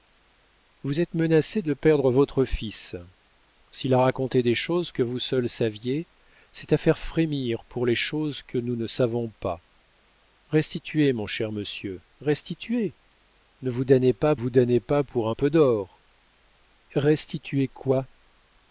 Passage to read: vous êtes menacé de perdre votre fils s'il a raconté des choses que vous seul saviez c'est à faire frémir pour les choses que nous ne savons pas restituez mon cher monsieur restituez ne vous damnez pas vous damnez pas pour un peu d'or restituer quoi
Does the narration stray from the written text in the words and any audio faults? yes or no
no